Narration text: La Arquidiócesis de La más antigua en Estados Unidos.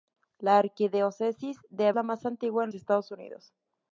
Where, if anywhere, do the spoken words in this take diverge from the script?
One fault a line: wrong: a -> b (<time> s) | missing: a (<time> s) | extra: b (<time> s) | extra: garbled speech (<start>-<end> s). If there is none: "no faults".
no faults